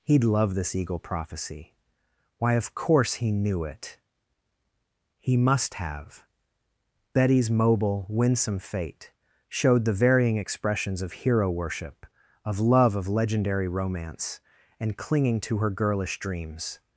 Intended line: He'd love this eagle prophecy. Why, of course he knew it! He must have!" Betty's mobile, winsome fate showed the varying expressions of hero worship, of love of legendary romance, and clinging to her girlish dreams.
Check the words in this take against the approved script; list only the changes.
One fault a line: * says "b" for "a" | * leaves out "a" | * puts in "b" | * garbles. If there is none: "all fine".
all fine